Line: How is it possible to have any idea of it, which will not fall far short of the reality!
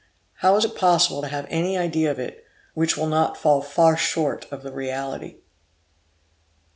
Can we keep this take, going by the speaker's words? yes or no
yes